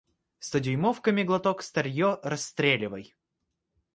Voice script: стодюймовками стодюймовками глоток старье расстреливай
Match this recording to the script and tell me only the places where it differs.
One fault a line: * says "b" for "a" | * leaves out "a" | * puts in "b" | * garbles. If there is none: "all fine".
* leaves out "стодюймовками"